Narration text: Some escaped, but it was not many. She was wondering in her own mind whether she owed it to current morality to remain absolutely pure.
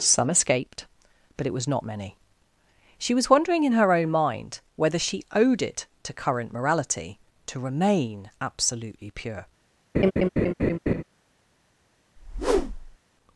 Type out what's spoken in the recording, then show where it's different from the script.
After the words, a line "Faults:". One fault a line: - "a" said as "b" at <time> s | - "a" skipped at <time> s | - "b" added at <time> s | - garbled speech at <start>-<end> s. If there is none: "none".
Some escaped, but it was not many. She was wondering in her own mind whether she owed it to current morality to remain absolutely pure.
Faults:
none